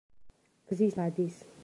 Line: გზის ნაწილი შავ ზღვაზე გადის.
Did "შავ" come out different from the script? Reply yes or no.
yes